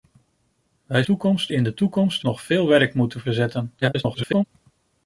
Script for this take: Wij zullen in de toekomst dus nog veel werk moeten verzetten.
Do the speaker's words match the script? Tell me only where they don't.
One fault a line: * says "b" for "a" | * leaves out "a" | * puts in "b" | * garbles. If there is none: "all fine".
* says "toekomst" for "zullen"
* leaves out "dus"
* garbles